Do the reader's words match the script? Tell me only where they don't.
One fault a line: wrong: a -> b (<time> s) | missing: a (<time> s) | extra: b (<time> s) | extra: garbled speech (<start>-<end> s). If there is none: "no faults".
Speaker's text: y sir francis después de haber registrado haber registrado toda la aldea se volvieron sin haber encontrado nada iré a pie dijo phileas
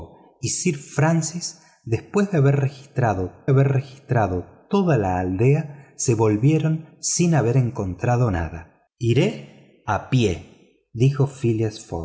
no faults